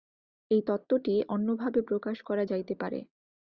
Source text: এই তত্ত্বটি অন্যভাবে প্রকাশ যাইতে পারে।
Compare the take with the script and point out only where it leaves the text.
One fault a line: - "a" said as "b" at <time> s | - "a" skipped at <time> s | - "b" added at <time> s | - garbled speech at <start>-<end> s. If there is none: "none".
- "করা" added at 2.2 s